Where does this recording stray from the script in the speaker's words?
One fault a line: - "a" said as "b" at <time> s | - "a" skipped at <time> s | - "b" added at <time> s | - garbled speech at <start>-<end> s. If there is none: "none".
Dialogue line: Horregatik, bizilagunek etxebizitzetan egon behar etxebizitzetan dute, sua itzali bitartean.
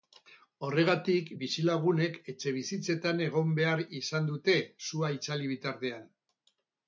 - "etxebizitzetan" said as "izan" at 4.0 s